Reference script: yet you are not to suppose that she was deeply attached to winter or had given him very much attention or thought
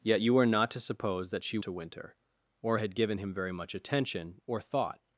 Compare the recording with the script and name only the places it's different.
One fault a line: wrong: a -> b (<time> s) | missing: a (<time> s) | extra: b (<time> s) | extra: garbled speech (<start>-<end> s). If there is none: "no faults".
missing: was deeply attached (1.6 s)